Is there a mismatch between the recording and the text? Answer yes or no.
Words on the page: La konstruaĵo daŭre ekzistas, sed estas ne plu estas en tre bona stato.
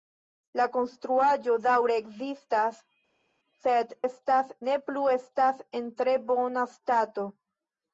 no